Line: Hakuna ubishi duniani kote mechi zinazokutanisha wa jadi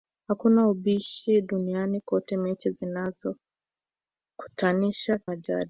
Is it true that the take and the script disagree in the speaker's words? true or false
false